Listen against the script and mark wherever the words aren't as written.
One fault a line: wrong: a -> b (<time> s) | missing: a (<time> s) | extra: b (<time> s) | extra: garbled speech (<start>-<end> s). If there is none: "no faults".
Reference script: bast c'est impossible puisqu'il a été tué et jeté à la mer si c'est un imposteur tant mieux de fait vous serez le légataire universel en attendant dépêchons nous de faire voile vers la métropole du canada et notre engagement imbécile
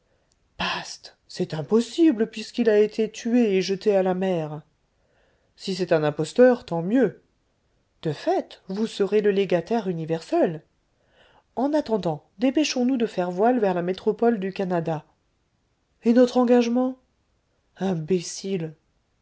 no faults